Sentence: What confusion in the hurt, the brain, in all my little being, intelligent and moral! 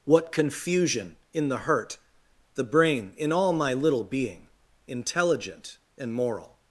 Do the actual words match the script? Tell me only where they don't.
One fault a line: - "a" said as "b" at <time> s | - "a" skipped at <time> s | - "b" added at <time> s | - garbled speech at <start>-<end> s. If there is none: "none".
none